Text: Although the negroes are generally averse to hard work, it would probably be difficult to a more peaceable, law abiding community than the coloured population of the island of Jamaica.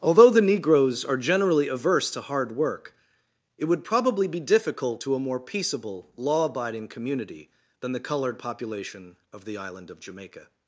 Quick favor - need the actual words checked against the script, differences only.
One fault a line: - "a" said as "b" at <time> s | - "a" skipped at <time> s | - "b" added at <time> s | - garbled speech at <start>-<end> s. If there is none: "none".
none